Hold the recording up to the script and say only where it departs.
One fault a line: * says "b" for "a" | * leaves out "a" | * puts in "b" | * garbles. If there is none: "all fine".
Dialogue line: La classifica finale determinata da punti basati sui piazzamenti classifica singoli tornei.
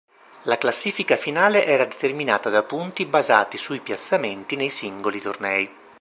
* puts in "era"
* says "nei" for "classifica"